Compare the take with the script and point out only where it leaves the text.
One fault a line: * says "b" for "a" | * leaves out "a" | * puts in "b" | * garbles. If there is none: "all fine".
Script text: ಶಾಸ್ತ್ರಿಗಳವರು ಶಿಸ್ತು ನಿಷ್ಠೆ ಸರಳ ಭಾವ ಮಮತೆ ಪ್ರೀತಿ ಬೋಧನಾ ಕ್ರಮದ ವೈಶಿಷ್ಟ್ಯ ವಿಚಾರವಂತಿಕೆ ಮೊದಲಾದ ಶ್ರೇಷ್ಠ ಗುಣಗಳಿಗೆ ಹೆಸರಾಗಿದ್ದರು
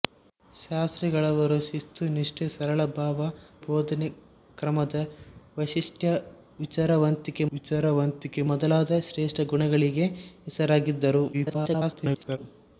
* leaves out "ಮಮತೆ ಪ್ರೀತಿ"
* puts in "ವಿಚಾರವಂತಿಕೆ"
* garbles